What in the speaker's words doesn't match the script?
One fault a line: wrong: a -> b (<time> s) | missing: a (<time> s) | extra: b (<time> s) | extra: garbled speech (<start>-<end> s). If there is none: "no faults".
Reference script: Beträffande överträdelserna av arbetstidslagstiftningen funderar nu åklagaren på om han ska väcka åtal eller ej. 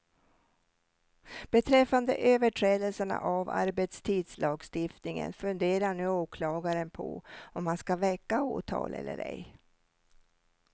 no faults